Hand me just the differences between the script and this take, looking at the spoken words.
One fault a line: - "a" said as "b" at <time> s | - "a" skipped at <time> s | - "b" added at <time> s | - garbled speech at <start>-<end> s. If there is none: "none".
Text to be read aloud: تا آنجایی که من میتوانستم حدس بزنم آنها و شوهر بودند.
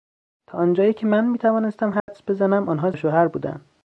none